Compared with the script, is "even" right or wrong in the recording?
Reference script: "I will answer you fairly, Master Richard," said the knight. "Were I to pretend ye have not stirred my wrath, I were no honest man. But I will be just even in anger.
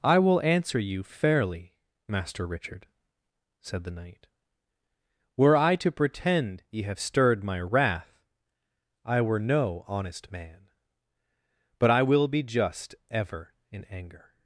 wrong